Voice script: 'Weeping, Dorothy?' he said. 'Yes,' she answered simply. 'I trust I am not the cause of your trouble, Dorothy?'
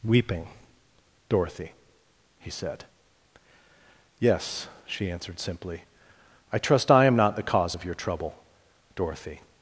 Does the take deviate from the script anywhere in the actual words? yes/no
no